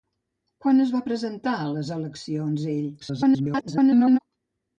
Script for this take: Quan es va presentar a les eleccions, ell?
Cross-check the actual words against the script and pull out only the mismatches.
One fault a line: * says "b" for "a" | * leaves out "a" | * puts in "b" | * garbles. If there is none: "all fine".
* garbles